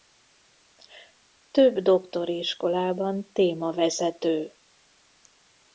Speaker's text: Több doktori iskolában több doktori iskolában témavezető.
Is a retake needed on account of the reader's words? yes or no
yes